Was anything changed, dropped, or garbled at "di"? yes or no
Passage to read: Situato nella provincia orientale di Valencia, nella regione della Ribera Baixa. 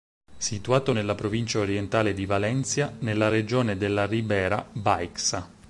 no